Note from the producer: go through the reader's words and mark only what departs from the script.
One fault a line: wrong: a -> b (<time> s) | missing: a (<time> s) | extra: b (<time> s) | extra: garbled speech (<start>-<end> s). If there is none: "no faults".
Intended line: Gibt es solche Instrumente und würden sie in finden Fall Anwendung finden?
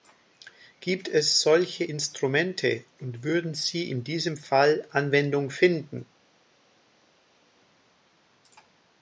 wrong: finden -> diesem (4.0 s)